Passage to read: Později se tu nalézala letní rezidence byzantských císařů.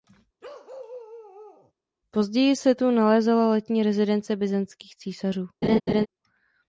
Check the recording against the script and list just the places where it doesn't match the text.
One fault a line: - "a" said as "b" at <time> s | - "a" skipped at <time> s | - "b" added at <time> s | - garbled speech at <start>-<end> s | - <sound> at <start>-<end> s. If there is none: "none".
- bark at 0.4-1.7 s
- laugh at 5.6-6.1 s